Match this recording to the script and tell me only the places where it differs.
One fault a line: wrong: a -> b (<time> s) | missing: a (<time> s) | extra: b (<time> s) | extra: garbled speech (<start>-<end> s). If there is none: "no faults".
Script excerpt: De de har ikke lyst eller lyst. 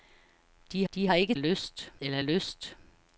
no faults